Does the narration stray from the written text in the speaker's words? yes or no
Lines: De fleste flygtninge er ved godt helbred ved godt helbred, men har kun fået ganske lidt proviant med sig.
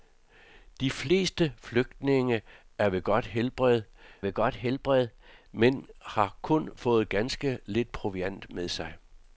no